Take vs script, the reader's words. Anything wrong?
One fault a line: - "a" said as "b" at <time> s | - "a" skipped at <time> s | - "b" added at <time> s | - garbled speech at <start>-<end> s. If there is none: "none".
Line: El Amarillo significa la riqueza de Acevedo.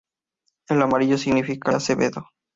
- "la riqueza de" skipped at 1.7 s